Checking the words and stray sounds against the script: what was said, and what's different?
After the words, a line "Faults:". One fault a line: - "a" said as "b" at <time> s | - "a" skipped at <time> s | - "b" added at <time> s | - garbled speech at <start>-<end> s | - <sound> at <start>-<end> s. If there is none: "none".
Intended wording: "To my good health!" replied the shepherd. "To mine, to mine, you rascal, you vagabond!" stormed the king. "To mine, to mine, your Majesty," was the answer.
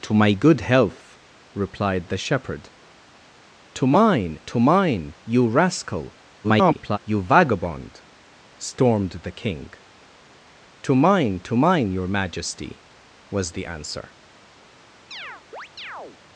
"To my good health!" replied the shepherd. "To mine, to mine, you rascal, [garbled] you vagabond!" stormed the king. "To mine, to mine, your Majesty," was the answer.
Faults:
- garbled speech at 6.4-7.0 s
- chirp at 15.1-16.2 s